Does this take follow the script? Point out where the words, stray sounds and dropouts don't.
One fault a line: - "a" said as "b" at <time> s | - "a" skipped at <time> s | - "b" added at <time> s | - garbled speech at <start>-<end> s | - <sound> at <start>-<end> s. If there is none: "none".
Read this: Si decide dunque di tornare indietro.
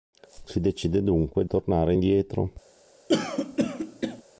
- "di" skipped at 1.4 s
- throat clearing at 3.1-4.2 s